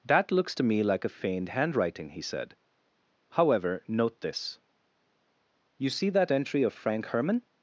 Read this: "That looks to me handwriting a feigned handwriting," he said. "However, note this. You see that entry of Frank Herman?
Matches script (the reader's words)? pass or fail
fail